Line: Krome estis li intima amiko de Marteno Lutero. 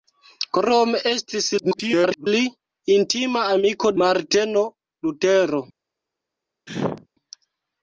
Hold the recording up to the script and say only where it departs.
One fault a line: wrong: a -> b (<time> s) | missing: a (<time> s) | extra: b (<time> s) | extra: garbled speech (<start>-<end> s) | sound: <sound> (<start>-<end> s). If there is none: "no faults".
extra: garbled speech (1.6-2.3 s)
missing: de (3.9 s)
sound: sneeze (6.7-7.1 s)